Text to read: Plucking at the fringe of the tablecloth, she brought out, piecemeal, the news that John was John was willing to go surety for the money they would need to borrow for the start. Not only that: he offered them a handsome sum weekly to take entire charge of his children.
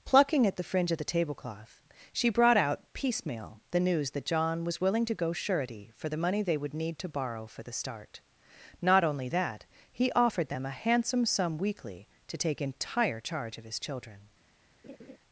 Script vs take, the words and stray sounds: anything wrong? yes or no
yes